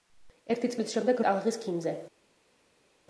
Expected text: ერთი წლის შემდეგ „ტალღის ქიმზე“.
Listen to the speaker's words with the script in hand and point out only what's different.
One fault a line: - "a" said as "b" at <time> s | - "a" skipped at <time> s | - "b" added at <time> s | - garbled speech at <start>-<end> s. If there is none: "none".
none